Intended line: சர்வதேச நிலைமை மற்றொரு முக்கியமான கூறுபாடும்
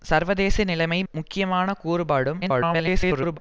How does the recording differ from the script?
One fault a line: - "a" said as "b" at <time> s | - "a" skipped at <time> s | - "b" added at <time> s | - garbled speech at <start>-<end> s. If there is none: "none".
- "மற்றொரு" skipped at 1.0 s
- garbled speech at 2.4-3.4 s